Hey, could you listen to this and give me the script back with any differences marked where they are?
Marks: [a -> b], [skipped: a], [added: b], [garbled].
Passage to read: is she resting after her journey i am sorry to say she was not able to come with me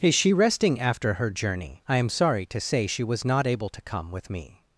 is she resting after her journey i am sorry to say she was not able to come with me